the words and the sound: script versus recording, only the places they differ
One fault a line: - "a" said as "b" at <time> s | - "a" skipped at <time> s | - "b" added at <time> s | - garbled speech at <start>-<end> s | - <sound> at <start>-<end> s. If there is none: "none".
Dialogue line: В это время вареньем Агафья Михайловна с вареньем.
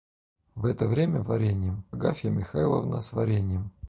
none